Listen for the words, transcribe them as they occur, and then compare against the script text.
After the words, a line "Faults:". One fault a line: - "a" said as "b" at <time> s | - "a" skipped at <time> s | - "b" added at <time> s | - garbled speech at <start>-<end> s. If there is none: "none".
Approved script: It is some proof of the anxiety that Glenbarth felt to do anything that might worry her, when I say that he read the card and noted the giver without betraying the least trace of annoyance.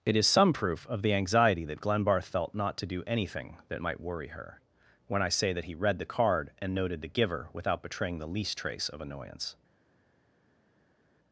It is some proof of the anxiety that Glenbarth felt not to do anything that might worry her, when I say that he read the card and noted the giver without betraying the least trace of annoyance.
Faults:
- "not" added at 2.5 s